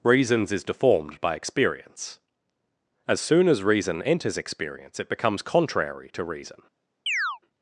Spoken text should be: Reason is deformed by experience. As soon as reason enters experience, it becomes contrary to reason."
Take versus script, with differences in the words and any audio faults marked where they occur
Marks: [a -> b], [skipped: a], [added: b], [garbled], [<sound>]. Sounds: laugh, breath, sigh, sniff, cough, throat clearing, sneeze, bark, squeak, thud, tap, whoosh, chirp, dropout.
[Reason -> Reasons] is deformed by experience. As soon as reason enters experience, it becomes contrary to reason." [chirp]